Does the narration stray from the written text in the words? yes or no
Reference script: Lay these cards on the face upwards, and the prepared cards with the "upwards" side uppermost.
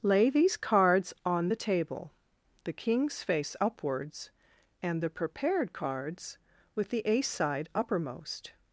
yes